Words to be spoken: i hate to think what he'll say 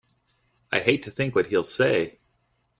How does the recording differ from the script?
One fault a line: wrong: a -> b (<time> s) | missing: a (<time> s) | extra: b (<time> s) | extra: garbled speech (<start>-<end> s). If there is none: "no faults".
no faults